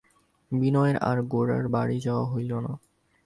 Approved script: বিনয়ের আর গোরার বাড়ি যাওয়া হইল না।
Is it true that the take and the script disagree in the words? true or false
false